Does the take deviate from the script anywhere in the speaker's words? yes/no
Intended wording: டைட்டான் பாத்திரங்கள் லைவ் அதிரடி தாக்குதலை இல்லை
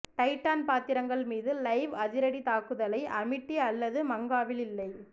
yes